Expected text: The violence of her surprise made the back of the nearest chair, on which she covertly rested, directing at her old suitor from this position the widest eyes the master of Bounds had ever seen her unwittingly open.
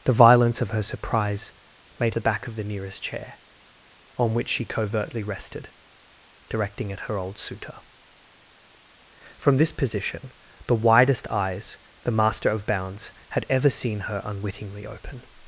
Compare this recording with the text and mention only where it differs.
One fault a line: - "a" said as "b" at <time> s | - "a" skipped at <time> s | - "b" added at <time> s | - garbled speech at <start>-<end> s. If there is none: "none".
none